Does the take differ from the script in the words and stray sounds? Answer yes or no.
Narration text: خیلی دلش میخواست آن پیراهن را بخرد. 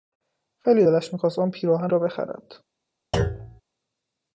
yes